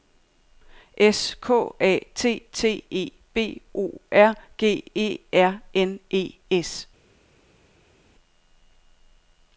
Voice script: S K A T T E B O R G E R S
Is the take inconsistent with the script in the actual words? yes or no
yes